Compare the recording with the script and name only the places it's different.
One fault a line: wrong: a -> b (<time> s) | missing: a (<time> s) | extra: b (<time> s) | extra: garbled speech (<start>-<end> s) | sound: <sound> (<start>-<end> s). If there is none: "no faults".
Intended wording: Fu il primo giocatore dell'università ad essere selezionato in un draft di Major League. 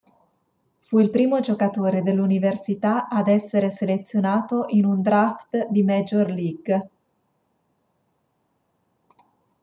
no faults